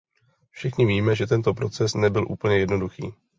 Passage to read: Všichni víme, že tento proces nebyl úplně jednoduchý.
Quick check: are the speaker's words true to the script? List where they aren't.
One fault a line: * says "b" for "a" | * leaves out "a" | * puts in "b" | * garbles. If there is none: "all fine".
all fine